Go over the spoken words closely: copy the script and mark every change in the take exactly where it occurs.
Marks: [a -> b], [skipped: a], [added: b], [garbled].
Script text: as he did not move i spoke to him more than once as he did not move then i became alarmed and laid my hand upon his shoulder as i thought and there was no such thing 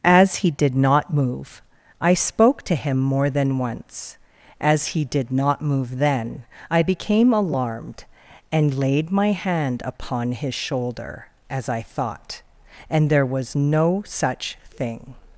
as he did not move i spoke to him more than once as he did not move then i became alarmed and laid my hand upon his shoulder as i thought and there was no such thing